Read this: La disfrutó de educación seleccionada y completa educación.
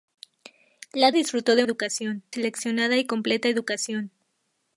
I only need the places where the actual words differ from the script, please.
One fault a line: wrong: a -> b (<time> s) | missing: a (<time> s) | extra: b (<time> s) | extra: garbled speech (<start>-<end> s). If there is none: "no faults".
no faults